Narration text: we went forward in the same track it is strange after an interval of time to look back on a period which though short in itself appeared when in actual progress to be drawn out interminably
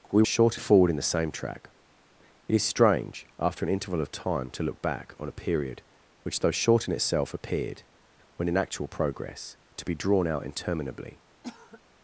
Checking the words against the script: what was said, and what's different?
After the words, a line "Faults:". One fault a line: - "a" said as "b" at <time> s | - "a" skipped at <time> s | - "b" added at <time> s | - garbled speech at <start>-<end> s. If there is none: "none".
we short forward in the same track it is strange after an interval of time to look back on a period which though short in itself appeared when in actual progress to be drawn out interminably
Faults:
- "went" said as "short" at 0.2 s